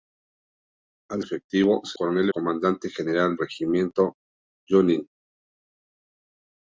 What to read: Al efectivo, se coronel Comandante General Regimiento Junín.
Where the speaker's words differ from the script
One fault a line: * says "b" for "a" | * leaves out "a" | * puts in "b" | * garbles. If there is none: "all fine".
all fine